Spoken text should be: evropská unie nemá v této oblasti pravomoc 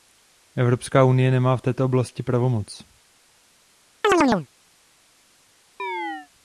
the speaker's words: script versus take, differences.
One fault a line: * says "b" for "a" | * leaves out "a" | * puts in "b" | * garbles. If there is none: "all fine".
all fine